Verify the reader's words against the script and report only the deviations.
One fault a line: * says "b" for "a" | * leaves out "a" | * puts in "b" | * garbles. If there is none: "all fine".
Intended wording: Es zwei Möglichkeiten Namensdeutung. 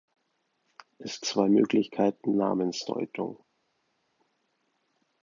all fine